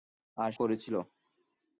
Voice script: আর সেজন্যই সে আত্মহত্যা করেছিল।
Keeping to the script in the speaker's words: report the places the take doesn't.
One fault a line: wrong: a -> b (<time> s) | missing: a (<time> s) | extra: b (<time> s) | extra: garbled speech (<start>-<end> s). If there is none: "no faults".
missing: সেজন্যই সে আত্মহত্যা (0.5 s)